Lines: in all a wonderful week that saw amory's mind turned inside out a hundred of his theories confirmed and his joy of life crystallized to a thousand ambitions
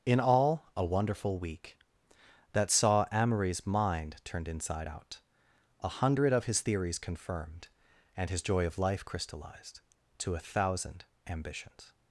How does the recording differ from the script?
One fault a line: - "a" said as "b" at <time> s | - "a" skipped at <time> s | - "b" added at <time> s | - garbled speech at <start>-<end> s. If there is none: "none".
none